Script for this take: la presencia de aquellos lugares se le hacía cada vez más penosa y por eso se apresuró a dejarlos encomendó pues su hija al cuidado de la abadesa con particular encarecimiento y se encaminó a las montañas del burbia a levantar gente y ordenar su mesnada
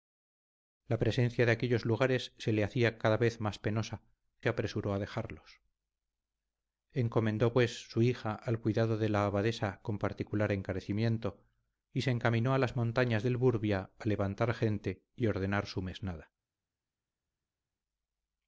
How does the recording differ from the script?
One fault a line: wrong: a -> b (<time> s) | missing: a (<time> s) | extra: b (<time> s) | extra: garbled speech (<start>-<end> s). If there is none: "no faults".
missing: y por eso (4.0 s)